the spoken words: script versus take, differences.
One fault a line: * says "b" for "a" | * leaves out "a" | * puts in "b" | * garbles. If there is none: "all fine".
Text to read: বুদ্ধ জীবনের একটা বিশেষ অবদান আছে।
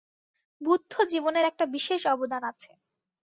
all fine